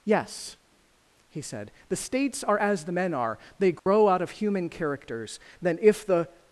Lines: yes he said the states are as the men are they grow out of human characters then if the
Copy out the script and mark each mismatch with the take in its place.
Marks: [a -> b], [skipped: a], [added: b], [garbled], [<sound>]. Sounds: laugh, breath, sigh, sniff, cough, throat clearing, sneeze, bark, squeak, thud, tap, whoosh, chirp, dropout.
yes he said the states are as the men are they grow [dropout] out of human characters then if the